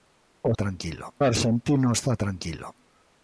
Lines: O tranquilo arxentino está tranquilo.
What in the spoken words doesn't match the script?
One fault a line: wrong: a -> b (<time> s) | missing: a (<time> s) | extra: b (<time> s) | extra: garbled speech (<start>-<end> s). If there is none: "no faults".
no faults